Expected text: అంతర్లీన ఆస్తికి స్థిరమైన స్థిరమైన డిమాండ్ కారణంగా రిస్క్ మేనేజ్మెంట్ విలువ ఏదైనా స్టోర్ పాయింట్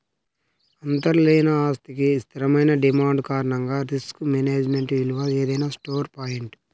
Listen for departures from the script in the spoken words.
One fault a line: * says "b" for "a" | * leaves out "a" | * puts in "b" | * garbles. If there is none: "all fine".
* leaves out "స్థిరమైన"